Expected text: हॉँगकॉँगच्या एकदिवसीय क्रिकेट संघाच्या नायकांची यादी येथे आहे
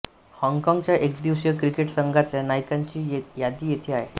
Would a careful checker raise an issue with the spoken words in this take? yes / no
no